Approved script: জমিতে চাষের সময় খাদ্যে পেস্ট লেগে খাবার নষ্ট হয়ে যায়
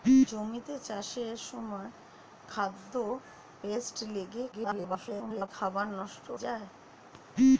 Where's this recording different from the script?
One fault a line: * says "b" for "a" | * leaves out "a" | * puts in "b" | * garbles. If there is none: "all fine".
* garbles
* leaves out "হয়ে"